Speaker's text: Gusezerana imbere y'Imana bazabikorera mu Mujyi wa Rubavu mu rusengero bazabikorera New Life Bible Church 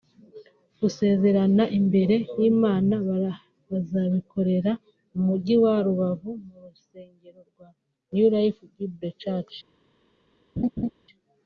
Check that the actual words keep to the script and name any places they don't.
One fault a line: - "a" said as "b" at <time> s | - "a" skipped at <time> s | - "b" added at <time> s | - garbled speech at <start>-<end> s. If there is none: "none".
- "bazabikorera" said as "rwa" at 7.5 s